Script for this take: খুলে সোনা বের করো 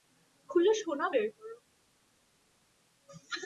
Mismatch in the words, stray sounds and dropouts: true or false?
false